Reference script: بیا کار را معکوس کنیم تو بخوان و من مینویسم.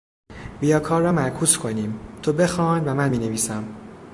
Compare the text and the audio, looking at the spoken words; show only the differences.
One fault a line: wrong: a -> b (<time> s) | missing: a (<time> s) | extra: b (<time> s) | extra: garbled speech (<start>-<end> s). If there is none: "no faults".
no faults